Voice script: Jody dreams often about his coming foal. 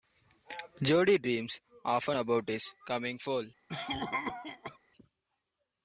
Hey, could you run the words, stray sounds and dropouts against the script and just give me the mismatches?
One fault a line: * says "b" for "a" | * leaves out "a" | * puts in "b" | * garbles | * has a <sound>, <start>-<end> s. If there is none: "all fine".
* has a cough, 3.7-4.8 s